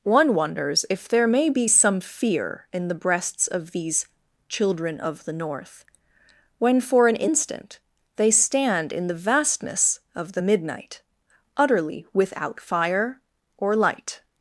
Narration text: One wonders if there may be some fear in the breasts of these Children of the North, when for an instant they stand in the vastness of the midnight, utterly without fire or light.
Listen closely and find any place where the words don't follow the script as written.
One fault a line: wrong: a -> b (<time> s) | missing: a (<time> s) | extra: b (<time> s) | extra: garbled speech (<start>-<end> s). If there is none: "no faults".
no faults